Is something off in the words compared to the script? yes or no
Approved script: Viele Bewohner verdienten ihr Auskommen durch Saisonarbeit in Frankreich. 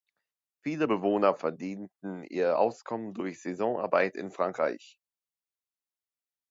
no